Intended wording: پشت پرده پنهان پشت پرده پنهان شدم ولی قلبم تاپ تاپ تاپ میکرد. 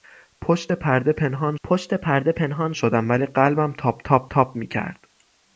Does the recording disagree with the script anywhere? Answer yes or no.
no